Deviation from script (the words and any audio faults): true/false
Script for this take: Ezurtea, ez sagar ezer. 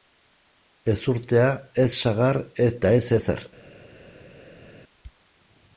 true